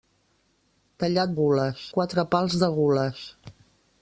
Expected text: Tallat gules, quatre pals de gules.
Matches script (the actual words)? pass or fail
pass